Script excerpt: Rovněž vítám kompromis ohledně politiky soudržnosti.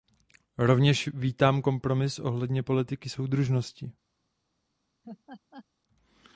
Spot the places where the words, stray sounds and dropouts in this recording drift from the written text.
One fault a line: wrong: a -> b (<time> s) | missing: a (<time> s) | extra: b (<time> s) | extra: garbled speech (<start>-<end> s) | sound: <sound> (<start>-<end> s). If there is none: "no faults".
sound: laugh (5.0-5.7 s)